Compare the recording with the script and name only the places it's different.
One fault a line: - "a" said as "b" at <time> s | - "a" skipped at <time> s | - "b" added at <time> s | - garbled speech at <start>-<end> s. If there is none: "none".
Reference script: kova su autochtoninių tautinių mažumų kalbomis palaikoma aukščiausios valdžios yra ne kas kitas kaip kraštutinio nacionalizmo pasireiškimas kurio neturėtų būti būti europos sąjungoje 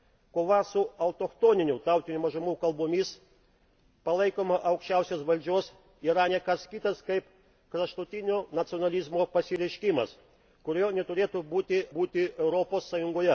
none